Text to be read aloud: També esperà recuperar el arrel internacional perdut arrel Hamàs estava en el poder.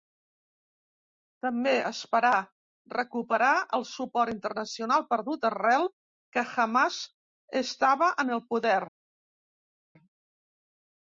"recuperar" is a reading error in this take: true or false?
false